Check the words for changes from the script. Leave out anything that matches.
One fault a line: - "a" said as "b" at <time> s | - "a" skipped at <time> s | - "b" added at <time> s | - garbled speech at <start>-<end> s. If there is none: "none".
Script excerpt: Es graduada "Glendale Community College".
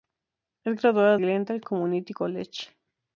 none